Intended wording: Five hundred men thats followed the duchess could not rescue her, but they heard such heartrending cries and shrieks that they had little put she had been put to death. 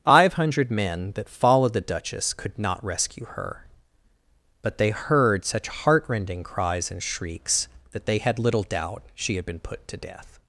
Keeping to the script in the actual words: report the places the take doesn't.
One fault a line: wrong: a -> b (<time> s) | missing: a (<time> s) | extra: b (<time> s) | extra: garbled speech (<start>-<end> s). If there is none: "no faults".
wrong: thats -> that (1.1 s)
wrong: put -> doubt (8.6 s)